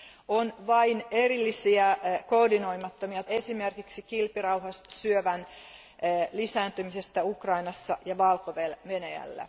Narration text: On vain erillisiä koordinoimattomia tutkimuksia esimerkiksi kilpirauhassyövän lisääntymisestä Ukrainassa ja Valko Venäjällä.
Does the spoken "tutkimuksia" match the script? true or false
false